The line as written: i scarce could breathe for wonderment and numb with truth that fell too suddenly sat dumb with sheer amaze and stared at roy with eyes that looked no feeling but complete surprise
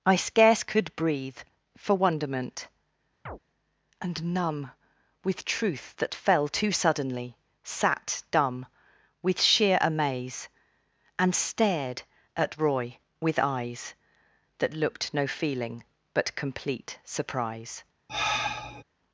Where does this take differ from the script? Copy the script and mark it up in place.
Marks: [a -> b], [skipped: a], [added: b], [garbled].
i scarce could breathe for wonderment and numb with truth that fell too suddenly sat dumb with sheer amaze and stared at roy with eyes that looked no feeling but complete surprise